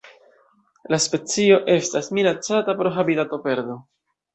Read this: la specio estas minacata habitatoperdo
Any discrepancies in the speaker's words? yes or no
yes